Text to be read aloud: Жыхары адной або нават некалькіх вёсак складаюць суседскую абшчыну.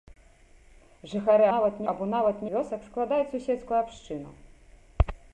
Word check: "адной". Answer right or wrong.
wrong